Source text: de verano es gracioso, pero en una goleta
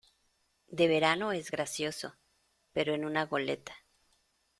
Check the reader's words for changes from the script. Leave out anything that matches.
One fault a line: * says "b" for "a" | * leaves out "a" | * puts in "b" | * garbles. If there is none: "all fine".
all fine